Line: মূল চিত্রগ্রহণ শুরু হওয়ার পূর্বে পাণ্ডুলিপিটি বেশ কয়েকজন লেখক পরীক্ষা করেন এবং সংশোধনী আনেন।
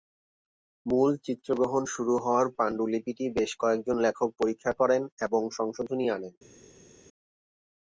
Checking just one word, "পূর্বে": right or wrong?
wrong